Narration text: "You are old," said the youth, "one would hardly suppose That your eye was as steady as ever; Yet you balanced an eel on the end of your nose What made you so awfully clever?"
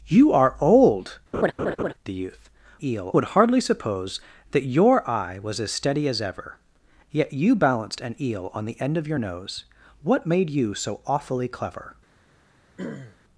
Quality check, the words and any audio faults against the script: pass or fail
fail